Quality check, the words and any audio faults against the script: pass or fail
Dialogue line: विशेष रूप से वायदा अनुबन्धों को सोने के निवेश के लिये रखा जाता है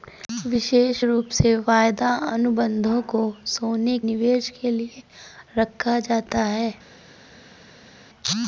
fail